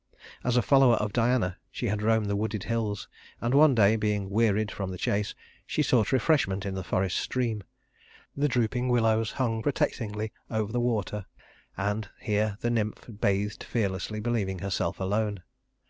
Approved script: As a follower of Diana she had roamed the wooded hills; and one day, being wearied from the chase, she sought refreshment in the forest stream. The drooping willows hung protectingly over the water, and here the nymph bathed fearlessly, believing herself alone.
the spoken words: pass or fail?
pass